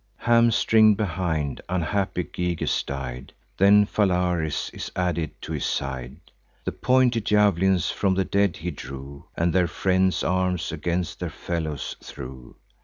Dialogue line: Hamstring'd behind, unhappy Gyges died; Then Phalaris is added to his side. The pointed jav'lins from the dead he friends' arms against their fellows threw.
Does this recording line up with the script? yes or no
no